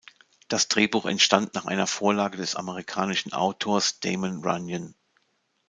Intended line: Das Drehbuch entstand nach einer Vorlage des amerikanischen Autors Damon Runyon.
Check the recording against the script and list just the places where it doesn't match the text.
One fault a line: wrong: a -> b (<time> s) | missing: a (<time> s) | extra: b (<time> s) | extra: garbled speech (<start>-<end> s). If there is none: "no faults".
no faults